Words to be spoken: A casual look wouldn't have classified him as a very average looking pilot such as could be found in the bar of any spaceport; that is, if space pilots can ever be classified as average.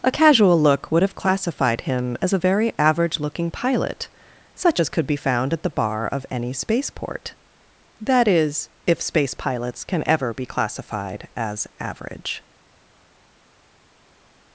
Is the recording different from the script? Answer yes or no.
yes